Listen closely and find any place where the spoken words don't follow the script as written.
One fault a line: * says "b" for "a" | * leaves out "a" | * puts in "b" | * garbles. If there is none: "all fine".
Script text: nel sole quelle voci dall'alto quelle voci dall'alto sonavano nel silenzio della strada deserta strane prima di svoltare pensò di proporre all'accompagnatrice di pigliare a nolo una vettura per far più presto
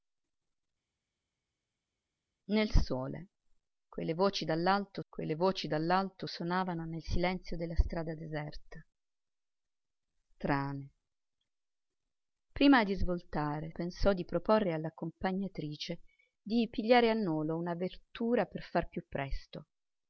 all fine